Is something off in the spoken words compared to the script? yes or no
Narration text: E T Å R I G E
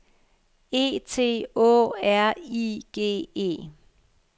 no